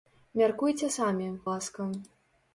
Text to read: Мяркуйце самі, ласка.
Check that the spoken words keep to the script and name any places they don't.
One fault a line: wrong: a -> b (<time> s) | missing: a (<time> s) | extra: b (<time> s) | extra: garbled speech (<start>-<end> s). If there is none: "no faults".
no faults